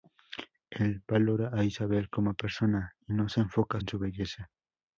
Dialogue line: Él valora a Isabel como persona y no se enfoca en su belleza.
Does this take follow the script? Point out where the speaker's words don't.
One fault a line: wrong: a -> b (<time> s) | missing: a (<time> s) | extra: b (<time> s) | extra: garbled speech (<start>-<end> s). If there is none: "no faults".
no faults